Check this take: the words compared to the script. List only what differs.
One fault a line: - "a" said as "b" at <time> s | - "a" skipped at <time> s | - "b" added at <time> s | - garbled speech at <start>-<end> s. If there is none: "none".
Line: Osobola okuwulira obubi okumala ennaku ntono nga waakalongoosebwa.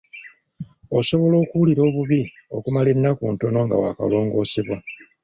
none